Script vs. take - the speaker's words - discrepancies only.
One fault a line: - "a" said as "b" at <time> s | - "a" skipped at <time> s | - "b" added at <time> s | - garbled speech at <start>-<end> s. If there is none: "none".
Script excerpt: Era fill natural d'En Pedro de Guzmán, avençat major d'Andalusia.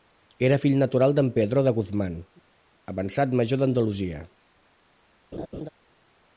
none